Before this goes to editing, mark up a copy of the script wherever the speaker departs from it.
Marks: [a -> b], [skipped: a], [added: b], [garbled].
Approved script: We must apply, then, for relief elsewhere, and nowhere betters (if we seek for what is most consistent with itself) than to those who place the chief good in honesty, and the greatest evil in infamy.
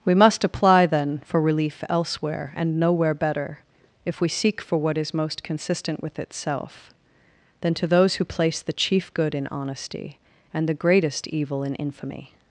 We must apply, then, for relief elsewhere, and nowhere [betters -> better] (if we seek for what is most consistent with itself) than to those who place the chief good in honesty, and the greatest evil in infamy.